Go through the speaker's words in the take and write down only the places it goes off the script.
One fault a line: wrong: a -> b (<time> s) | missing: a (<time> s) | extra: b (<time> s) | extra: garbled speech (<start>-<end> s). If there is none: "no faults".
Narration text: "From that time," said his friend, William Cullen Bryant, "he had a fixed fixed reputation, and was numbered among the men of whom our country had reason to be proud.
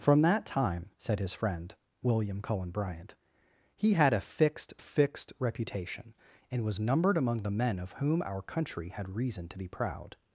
no faults